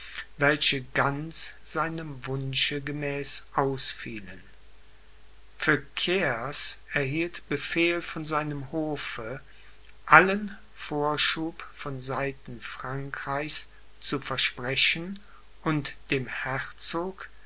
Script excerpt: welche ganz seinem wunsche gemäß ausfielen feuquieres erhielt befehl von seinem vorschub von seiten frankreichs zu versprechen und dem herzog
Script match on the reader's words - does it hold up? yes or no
no